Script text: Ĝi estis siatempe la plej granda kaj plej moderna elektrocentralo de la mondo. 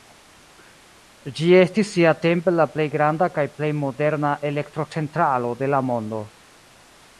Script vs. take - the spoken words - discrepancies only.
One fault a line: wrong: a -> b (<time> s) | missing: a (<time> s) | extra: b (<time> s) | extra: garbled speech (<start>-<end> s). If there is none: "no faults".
no faults